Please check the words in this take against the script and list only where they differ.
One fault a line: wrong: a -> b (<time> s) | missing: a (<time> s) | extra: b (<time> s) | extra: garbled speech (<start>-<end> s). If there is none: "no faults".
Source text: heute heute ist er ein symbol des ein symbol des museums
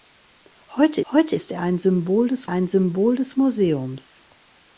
no faults